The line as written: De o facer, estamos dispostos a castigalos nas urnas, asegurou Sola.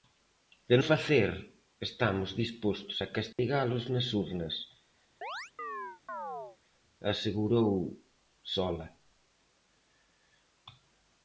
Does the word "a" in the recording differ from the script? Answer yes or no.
no